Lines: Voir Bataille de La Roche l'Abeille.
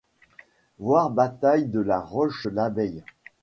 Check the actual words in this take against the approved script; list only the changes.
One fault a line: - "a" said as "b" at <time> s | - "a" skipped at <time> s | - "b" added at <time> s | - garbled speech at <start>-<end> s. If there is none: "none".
none